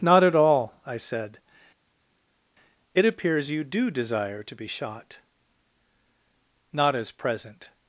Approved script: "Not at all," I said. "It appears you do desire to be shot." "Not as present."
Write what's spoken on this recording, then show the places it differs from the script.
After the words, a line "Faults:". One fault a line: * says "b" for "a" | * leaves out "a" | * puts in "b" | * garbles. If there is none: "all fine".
"Not at all," I said. "It appears you do desire to be shot." "Not as present."
Faults:
all fine